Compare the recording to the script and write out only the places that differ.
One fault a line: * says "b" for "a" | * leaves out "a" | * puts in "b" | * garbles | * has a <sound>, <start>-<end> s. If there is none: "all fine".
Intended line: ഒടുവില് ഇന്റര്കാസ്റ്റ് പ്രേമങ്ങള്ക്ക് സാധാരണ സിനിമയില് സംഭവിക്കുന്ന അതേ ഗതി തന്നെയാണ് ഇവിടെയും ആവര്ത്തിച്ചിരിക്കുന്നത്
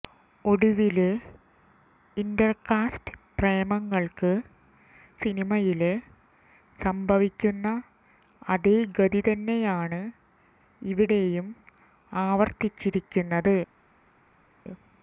* leaves out "സാധാരണ"